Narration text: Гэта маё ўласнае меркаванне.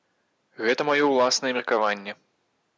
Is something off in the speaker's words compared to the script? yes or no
no